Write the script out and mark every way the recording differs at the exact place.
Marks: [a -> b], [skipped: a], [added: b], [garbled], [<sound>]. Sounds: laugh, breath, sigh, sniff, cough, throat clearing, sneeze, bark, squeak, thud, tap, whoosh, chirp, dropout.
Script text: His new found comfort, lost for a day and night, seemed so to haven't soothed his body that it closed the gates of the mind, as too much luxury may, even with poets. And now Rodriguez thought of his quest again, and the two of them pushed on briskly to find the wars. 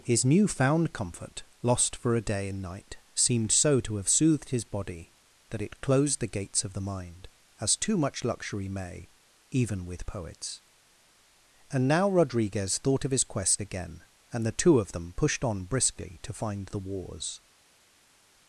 His new found comfort, lost for a day and night, seemed so to [haven't -> have] soothed his body that it closed the gates of the mind, as too much luxury may, even with poets. And now Rodriguez thought of his quest again, and the two of them pushed on briskly to find the wars.